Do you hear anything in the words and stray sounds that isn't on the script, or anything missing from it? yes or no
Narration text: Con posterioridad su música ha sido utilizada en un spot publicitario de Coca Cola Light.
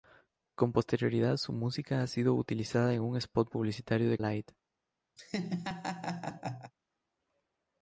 yes